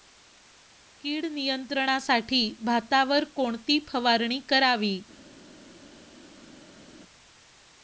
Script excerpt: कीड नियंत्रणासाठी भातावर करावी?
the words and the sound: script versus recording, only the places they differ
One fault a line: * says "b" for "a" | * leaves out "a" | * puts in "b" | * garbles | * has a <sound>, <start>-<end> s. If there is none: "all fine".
* puts in "कोणती फवारणी"